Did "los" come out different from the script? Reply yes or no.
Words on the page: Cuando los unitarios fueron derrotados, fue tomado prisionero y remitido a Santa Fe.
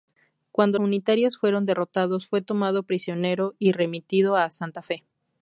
yes